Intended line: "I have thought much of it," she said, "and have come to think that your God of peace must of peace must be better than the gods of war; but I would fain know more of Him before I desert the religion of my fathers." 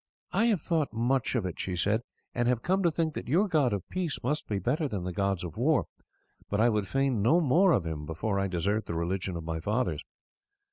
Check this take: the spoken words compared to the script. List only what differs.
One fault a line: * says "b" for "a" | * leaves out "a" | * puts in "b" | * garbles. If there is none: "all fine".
* leaves out "of peace must"